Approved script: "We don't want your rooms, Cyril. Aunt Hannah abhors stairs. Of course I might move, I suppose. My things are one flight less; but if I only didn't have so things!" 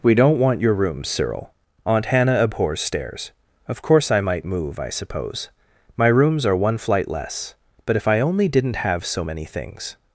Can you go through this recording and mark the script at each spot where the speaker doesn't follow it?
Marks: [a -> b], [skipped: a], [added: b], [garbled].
"We don't want your rooms, Cyril. Aunt Hannah abhors stairs. Of course I might move, I suppose. My [things -> rooms] are one flight less; but if I only didn't have so [added: many] things!"